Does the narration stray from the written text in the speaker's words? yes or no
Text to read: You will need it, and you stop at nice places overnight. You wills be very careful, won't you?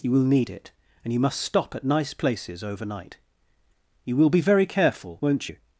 yes